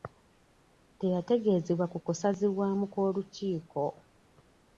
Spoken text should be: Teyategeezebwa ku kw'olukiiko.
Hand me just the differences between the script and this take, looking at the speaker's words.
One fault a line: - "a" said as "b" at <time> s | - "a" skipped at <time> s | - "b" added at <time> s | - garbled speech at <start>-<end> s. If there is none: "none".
- "kusazibwamu" added at 2.0 s